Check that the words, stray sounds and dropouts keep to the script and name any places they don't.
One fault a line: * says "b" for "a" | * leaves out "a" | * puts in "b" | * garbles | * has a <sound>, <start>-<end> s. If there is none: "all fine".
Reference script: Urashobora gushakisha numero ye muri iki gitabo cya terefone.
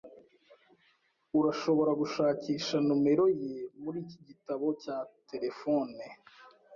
all fine